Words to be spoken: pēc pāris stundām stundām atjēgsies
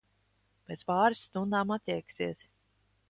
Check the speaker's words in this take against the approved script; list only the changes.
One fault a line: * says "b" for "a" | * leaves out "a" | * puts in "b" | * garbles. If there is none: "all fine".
* leaves out "stundām"